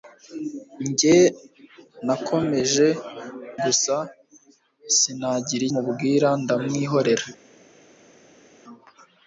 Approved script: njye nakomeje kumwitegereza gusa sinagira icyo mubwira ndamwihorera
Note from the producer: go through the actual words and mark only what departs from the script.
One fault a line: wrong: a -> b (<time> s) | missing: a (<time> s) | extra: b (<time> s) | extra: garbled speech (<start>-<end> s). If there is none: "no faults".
missing: kumwitegereza (2.9 s)
missing: icyo (5.6 s)